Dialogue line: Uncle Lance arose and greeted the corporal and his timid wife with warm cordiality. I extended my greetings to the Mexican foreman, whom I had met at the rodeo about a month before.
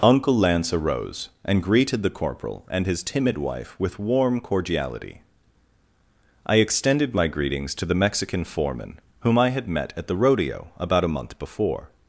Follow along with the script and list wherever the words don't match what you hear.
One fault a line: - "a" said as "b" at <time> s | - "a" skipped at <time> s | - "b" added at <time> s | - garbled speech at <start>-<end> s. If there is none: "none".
none